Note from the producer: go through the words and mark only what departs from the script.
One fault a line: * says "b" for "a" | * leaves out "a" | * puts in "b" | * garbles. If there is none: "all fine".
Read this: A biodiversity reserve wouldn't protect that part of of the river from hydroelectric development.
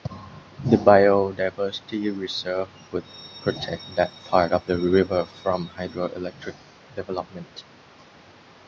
* says "The" for "A"
* says "would" for "wouldn't"
* leaves out "of"